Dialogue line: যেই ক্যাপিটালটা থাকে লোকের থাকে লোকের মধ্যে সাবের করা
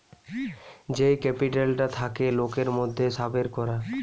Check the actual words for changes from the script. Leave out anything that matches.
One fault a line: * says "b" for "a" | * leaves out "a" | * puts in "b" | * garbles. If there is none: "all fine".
* leaves out "থাকে লোকের"